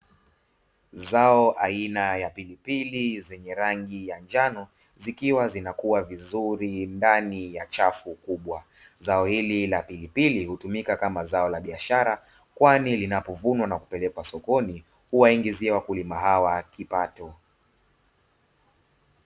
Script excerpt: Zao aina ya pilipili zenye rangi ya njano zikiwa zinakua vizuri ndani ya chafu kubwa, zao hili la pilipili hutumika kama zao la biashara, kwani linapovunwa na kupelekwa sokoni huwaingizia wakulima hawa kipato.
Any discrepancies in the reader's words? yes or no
no